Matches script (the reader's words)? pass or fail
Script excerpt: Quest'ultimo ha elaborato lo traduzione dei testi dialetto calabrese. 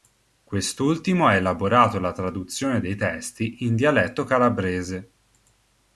fail